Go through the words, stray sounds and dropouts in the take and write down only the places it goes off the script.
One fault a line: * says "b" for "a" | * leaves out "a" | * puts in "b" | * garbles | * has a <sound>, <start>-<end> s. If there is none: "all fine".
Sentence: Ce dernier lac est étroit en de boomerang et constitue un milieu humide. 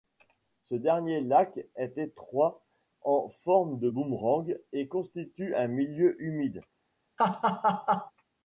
* puts in "forme"
* has a laugh, 7.2-8.1 s